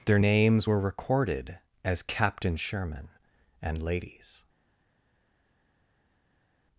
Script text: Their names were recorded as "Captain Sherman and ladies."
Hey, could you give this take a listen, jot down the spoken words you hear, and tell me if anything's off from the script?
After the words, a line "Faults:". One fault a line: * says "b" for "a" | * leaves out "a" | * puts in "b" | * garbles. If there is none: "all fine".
Their names were recorded as "Captain Sherman and ladies."
Faults:
all fine